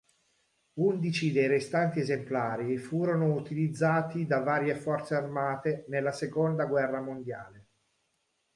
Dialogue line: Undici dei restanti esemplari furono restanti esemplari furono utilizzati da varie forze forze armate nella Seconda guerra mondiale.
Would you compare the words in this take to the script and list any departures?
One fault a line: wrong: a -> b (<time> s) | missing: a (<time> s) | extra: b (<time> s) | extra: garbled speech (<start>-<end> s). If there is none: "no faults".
missing: restanti esemplari furono (3.4 s)
missing: forze (5.1 s)